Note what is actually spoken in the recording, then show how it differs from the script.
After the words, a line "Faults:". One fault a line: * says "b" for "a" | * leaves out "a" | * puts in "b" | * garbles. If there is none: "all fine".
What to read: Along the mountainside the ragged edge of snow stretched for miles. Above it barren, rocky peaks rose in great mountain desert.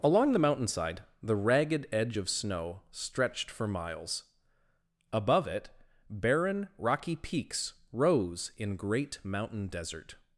Along the mountainside the ragged edge of snow stretched for miles. Above it barren, rocky peaks rose in great mountain desert.
Faults:
all fine